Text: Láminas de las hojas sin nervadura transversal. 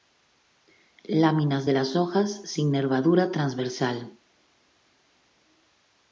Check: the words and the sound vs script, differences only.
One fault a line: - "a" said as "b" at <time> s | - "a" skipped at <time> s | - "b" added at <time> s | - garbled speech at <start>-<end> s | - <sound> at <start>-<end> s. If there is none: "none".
none